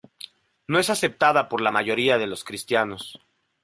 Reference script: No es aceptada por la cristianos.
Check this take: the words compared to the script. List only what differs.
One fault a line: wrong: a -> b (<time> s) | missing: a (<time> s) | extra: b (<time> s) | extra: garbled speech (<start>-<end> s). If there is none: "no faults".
extra: mayoría de los (1.7 s)